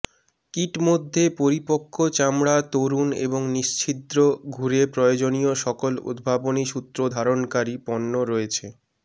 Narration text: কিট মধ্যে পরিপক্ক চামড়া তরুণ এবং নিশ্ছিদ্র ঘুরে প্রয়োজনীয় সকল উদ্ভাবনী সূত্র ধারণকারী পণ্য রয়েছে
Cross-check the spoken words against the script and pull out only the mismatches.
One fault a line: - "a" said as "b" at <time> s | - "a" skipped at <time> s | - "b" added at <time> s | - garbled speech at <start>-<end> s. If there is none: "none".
none